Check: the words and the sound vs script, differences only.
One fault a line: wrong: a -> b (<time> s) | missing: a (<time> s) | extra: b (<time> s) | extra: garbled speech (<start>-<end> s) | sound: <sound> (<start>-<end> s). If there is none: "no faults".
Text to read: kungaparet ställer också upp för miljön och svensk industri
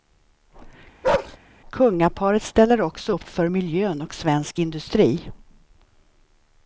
sound: bark (1.0-1.4 s)